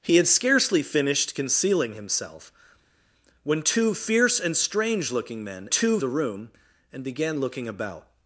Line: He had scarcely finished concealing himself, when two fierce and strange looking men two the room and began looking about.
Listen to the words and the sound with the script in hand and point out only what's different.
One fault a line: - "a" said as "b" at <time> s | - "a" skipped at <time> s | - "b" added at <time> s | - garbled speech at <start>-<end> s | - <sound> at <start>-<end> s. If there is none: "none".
none